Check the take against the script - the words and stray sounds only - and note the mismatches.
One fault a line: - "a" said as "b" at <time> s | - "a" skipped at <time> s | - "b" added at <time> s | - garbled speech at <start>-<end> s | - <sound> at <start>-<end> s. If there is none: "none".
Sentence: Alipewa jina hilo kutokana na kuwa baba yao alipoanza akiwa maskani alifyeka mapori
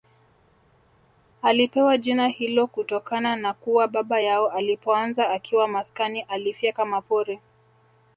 none